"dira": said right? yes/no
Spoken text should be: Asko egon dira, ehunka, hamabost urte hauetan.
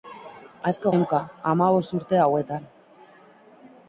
no